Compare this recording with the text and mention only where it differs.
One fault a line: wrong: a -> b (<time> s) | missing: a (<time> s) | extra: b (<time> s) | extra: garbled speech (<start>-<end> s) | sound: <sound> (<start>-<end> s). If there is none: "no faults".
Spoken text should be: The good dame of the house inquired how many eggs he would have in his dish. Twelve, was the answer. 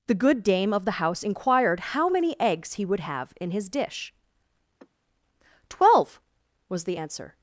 sound: sigh (4.8-4.9 s)